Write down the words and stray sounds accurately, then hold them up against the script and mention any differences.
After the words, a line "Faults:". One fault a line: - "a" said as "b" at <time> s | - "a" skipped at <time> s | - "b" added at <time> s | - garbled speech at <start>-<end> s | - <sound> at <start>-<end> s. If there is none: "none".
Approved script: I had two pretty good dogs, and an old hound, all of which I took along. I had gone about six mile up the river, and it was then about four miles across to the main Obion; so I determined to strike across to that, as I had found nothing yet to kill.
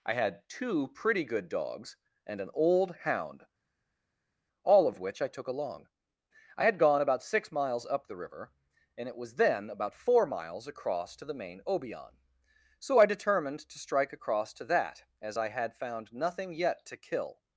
I had two pretty good dogs, and an old hound, all of which I took along. I had gone about six miles up the river, and it was then about four miles across to the main Obion; so I determined to strike across to that, as I had found nothing yet to kill.
Faults:
- "mile" said as "miles" at 7.5 s